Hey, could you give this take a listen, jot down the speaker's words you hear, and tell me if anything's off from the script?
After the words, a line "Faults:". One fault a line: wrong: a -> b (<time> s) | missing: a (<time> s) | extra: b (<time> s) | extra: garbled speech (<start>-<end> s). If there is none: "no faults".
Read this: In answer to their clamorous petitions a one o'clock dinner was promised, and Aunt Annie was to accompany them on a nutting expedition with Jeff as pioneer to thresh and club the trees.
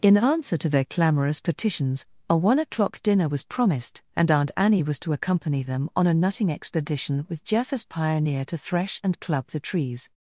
In answer to their clamorous petitions a one o'clock dinner was promised, and Aunt Annie was to accompany them on a nutting expedition with Jeff as pioneer to thresh and club the trees.
Faults:
no faults